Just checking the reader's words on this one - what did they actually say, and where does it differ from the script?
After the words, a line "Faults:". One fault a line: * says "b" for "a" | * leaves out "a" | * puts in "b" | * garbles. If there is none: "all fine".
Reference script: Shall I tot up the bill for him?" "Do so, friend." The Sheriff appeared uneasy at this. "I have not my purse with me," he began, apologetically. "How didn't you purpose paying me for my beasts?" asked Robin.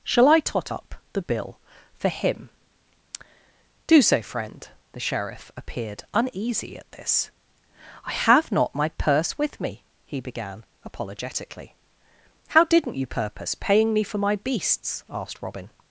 Shall I tot up the bill for him?" "Do so, friend." The Sheriff appeared uneasy at this. "I have not my purse with me," he began, apologetically. "How didn't you purpose paying me for my beasts?" asked Robin.
Faults:
all fine